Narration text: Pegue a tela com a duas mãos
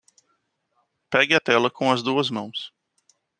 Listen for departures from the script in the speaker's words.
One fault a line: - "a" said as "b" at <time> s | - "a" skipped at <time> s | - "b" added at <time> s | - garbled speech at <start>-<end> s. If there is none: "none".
- "a" said as "as" at 1.9 s